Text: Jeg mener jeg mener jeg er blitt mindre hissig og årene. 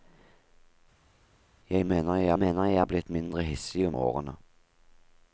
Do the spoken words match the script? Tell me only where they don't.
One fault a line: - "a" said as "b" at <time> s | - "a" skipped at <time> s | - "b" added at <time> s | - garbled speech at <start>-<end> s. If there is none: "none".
none